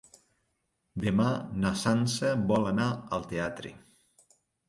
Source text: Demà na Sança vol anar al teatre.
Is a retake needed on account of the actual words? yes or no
no